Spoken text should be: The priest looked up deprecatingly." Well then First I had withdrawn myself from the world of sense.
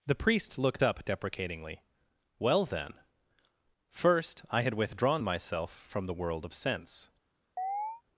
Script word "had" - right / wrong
right